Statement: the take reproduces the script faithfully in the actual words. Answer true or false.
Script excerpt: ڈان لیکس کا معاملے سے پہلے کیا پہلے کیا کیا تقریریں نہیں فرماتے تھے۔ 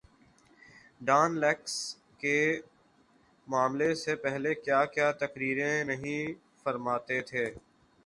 false